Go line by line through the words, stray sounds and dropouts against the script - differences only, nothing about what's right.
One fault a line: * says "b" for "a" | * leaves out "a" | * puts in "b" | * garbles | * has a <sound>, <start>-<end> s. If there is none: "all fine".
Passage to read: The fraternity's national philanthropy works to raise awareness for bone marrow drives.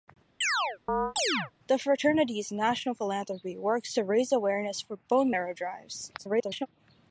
* has a chirp, 0.4-1.5 s
* garbles